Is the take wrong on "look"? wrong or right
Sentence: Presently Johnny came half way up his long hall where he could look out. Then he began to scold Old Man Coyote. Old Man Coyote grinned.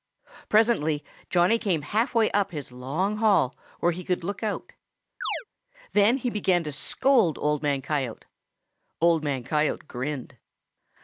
right